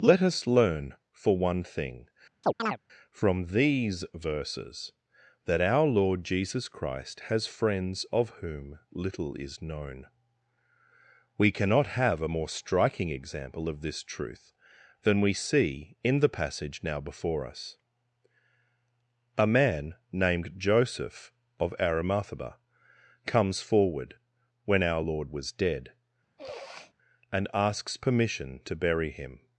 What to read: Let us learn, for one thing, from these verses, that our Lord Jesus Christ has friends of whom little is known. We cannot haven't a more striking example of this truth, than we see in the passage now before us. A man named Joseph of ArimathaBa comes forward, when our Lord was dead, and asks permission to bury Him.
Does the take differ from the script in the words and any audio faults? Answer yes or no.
yes